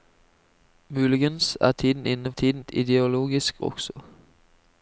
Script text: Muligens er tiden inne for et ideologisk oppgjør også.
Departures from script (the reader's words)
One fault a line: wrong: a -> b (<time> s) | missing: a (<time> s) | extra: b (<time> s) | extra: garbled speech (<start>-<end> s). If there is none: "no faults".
wrong: for -> tiden (2.3 s)
missing: oppgjør (3.6 s)